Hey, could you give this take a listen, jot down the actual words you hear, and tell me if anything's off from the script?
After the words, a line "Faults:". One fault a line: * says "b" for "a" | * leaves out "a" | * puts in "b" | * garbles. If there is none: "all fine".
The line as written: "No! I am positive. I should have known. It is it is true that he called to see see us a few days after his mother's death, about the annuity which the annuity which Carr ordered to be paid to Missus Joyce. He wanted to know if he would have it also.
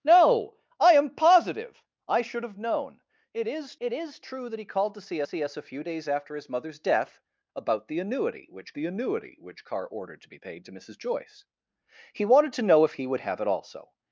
"No! I am positive. I should have known. It is it is true that he called to see see us a few days after his mother's death, about the annuity which the annuity which Carr ordered to be paid to Missus Joyce. He wanted to know if he would have it also.
Faults:
all fine